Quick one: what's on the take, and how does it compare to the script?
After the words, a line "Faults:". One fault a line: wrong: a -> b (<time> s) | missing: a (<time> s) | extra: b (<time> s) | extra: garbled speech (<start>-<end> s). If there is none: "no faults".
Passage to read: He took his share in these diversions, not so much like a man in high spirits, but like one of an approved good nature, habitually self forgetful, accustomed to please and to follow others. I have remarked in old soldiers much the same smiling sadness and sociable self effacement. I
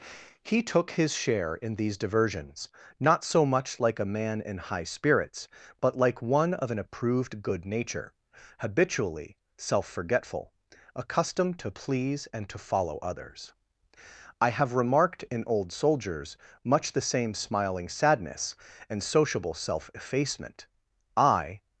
He took his share in these diversions, not so much like a man in high spirits, but like one of an approved good nature, habitually self forgetful, accustomed to please and to follow others. I have remarked in old soldiers much the same smiling sadness and sociable self effacement. I
Faults:
no faults